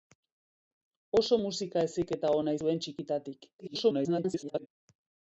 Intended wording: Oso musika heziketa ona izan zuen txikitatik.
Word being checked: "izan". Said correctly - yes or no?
no